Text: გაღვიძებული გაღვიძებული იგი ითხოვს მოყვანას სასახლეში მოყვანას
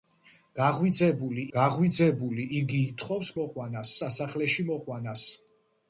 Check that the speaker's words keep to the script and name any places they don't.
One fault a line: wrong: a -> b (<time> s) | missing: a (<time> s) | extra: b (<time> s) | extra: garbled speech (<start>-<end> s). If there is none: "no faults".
no faults